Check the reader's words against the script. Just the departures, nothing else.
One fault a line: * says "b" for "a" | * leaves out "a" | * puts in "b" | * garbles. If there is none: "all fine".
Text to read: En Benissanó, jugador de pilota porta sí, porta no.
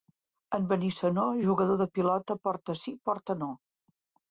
all fine